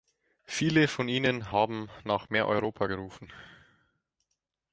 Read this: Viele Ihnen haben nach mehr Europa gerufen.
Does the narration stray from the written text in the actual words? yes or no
yes